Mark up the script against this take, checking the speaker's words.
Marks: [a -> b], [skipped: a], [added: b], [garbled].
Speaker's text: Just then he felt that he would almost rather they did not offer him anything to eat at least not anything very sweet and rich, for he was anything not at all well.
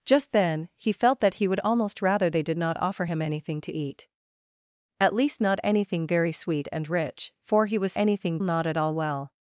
Just then he felt that he would almost rather they did not offer him anything to eat at least not anything very sweet and rich, for he was anything not at all well.